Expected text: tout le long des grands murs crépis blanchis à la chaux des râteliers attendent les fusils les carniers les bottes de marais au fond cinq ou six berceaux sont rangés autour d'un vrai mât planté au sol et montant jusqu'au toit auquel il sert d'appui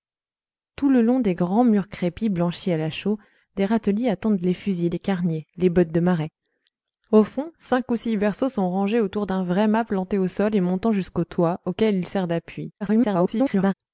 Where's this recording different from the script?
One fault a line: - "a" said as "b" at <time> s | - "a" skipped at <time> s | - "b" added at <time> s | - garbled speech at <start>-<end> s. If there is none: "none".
- garbled speech at 12.8-13.7 s